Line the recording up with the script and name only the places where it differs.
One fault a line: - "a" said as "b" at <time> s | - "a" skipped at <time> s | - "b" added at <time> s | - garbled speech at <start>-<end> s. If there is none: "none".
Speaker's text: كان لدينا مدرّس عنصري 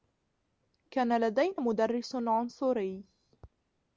none